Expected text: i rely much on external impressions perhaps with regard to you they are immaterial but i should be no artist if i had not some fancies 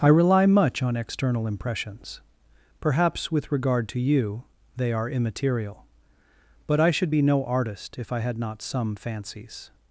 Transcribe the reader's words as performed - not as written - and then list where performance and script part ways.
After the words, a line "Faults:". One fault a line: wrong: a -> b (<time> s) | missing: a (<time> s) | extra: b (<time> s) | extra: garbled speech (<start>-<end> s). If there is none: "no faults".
i rely much on external impressions perhaps with regard to you they are immaterial but i should be no artist if i had not some fancies
Faults:
no faults